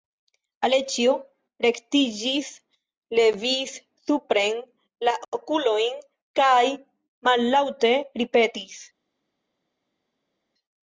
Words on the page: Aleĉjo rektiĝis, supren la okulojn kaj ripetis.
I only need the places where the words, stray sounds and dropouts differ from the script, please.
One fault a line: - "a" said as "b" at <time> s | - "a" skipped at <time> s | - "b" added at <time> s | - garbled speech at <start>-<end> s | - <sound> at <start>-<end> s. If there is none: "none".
- "levis" added at 3.2 s
- "mallaŭte" added at 7.3 s